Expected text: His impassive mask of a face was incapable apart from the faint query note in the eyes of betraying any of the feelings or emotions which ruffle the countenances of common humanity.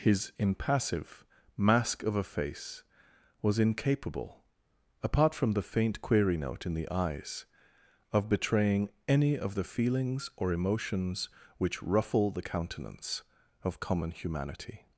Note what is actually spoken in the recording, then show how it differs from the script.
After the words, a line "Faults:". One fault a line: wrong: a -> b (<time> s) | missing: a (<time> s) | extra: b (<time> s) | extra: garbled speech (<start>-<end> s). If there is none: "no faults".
His impassive mask of a face was incapable apart from the faint query note in the eyes of betraying any of the feelings or emotions which ruffle the countenance of common humanity.
Faults:
wrong: countenances -> countenance (12.4 s)